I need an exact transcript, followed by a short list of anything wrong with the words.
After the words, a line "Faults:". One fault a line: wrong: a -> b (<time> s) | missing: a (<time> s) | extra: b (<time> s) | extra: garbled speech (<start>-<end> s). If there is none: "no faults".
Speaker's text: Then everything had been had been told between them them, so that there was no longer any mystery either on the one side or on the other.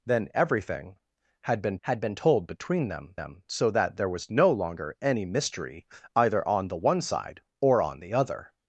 Then everything had been had been told between them them, so that there was no longer any mystery either on the one side or on the other.
Faults:
no faults